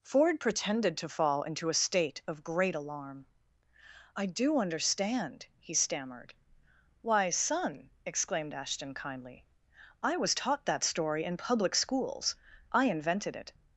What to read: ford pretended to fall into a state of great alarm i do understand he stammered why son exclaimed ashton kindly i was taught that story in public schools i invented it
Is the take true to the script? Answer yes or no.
yes